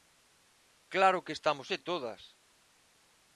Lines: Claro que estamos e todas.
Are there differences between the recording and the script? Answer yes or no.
no